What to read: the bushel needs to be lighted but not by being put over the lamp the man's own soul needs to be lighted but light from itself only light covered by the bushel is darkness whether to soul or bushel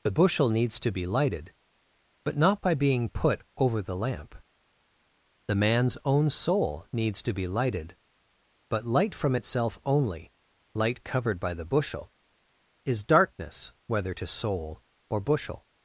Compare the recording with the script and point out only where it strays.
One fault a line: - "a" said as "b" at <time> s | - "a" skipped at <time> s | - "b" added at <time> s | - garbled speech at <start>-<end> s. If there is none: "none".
none